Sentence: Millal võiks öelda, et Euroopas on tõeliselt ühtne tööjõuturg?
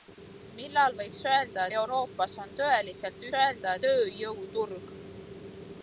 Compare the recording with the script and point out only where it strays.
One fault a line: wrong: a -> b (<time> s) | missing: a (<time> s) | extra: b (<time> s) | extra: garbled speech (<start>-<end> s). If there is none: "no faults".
missing: et (1.7 s)
wrong: ühtne -> öelda (3.4 s)